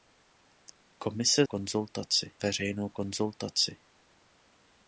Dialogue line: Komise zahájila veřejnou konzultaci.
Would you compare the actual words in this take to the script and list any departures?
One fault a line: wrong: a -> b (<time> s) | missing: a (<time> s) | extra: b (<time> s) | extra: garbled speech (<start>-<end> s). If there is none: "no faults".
wrong: zahájila -> konzultaci (1.4 s)